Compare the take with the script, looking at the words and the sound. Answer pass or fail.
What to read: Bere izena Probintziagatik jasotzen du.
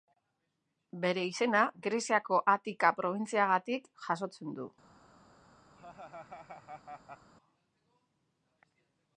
fail